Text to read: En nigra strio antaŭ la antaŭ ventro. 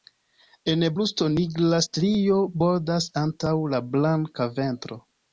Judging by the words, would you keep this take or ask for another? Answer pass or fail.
fail